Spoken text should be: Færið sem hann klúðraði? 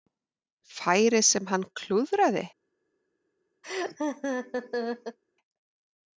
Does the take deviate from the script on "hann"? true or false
false